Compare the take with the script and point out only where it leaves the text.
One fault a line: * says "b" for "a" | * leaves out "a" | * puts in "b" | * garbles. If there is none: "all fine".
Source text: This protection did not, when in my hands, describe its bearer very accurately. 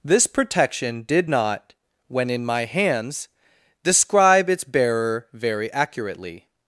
all fine